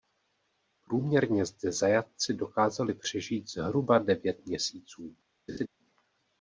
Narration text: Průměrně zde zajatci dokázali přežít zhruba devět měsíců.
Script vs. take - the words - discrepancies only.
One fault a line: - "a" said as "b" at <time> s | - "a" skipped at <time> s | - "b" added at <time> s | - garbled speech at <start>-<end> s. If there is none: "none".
none